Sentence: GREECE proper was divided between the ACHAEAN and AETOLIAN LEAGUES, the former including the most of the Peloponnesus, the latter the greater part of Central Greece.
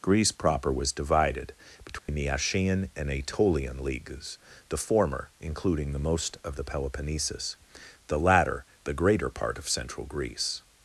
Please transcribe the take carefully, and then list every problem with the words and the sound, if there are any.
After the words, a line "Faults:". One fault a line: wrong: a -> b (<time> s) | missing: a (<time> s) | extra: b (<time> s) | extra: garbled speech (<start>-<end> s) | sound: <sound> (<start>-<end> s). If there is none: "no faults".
GREECE proper was divided between the ACHAEAN and AETOLIAN LEAGUES, the former including the most of the Peloponnesus, the latter the greater part of Central Greece.
Faults:
sound: dropout (2.0-2.1 s)